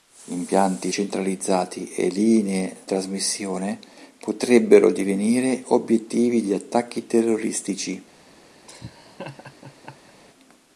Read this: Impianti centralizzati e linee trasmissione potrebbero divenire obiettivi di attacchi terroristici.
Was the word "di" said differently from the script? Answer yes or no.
no